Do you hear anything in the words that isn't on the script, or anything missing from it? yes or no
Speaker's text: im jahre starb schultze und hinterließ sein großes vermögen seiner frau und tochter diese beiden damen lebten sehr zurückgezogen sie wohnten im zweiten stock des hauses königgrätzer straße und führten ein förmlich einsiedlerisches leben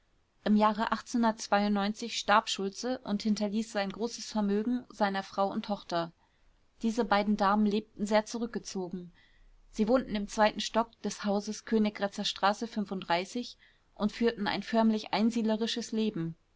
no